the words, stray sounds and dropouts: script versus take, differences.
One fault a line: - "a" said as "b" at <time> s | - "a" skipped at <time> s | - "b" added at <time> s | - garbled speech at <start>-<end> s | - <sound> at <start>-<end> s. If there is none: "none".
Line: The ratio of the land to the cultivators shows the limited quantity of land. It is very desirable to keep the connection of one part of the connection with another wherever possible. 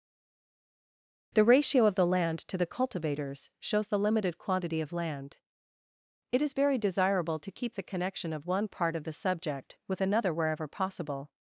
- "connection" said as "subject" at 9.1 s